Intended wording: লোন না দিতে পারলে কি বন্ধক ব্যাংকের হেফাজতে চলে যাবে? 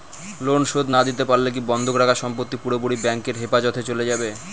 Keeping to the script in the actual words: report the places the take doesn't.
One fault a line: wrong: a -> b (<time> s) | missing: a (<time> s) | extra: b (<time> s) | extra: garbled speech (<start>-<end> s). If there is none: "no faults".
extra: শোধ (0.7 s)
extra: রাখা সম্পত্তি পুরোপুরি (2.0 s)